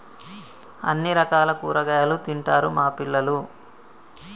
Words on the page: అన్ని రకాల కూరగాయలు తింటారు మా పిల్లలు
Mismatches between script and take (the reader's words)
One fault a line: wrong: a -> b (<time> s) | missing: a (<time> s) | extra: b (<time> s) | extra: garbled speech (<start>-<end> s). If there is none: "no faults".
no faults